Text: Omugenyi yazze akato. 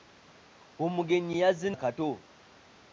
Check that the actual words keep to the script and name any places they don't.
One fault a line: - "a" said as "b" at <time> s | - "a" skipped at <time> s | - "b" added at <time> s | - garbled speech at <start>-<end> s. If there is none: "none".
none